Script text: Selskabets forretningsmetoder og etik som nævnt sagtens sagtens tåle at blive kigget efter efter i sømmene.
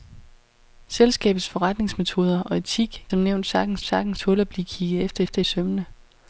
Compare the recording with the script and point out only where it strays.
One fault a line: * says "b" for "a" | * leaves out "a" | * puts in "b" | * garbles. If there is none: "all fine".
all fine